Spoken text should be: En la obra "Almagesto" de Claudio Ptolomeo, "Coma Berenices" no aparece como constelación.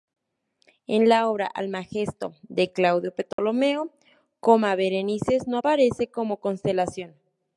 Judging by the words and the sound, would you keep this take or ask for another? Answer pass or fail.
fail